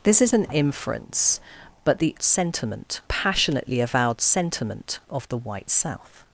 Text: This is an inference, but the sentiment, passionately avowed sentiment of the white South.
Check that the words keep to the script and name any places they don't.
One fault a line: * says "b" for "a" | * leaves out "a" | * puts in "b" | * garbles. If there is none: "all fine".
all fine